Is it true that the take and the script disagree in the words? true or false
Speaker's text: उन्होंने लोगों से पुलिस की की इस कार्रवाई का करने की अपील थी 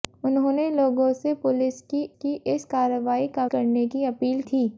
false